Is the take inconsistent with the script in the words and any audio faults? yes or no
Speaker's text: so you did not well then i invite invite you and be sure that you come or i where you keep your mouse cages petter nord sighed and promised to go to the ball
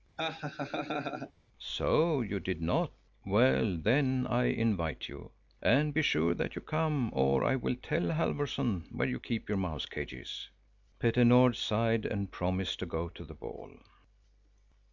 yes